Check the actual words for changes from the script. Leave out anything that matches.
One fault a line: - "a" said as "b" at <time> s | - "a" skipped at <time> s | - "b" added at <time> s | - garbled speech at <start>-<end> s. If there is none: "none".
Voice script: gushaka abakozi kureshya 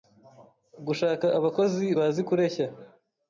- "bazi" added at 2.0 s